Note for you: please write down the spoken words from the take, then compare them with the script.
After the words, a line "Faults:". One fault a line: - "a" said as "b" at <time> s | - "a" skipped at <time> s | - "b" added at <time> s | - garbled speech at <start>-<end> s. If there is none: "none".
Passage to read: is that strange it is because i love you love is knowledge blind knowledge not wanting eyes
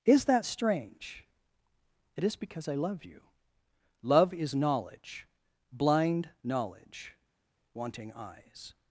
is that strange it is because i love you love is knowledge blind knowledge wanting eyes
Faults:
- "not" skipped at 7.1 s